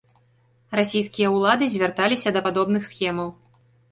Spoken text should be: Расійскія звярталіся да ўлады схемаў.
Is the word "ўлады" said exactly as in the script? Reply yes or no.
no